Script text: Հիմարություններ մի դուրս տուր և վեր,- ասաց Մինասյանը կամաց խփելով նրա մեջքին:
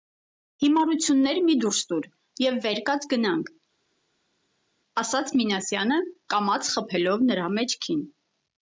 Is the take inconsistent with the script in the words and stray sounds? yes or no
yes